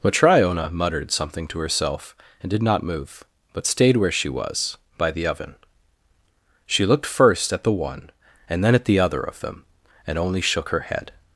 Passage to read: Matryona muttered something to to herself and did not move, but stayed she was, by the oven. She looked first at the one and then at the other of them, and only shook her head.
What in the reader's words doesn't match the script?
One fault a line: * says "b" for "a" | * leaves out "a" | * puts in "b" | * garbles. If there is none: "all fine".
* leaves out "to"
* puts in "where"